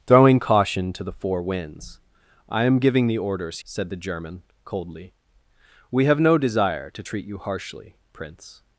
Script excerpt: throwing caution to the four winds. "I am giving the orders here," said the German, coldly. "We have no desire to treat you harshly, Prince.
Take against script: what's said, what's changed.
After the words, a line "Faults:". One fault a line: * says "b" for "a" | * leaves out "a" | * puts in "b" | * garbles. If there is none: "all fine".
throwing caution to the four winds. "I am giving the orders," said the German, coldly. "We have no desire to treat you harshly, Prince.
Faults:
* leaves out "here"